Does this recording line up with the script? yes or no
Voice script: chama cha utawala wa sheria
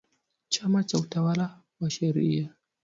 yes